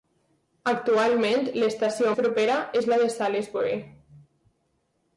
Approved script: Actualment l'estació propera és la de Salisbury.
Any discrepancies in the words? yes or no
no